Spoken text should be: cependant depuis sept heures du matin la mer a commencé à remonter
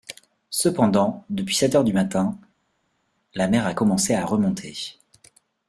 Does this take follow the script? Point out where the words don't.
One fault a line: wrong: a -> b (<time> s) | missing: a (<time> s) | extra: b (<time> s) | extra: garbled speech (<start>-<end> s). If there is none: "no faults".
no faults